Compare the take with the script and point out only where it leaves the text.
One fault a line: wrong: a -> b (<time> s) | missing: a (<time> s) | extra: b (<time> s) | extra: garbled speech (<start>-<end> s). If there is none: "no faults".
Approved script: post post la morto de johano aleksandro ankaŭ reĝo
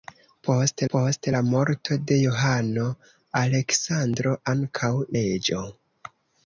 no faults